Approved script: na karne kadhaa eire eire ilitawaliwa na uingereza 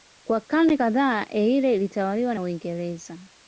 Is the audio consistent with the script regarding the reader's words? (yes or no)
no